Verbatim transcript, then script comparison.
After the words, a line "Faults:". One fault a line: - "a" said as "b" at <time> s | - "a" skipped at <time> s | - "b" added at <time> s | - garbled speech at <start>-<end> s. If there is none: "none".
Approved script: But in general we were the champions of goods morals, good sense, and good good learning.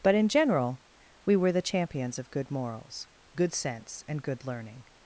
But in general we were the champions of good morals, good sense, and good learning.
Faults:
- "goods" said as "good" at 2.3 s
- "good" skipped at 4.5 s